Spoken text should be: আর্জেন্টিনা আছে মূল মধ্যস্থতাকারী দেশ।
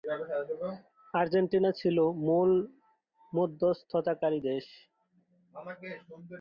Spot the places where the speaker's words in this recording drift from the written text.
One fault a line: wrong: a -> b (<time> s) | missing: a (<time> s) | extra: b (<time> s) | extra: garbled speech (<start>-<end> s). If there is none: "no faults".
wrong: আছে -> ছিল (1.7 s)